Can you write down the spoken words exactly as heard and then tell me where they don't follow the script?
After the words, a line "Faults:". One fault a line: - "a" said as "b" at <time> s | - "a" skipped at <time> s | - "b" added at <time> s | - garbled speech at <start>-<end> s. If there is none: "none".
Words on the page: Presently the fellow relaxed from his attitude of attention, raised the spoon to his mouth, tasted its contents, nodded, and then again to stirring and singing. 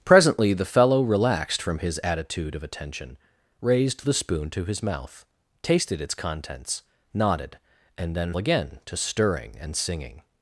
Presently the fellow relaxed from his attitude of attention, raised the spoon to his mouth, tasted its contents, nodded, and then again to stirring and singing.
Faults:
none